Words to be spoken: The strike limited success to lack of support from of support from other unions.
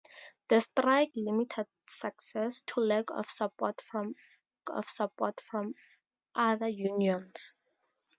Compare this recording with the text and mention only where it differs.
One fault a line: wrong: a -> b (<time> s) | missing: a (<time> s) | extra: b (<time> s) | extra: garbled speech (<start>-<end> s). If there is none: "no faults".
no faults